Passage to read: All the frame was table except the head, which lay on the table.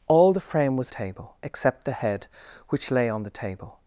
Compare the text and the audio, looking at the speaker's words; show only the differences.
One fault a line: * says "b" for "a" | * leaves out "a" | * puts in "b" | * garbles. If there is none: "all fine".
all fine